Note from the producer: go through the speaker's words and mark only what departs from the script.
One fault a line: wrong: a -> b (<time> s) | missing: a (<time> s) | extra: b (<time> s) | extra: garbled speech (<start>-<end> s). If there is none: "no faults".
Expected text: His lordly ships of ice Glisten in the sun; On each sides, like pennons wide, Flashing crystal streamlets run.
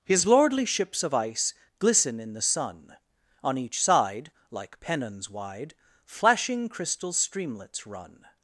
wrong: sides -> side (3.8 s)